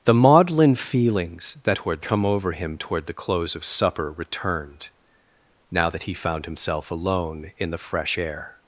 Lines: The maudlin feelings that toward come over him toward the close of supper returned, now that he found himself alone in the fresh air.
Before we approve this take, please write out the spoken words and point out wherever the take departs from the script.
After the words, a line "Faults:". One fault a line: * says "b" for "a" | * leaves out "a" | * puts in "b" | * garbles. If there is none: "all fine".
The maudlin feelings that toward come over him toward the close of supper returned, now that he found himself alone in the fresh air.
Faults:
all fine